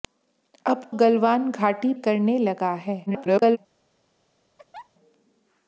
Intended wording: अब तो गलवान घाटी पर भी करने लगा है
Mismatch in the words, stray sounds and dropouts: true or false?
true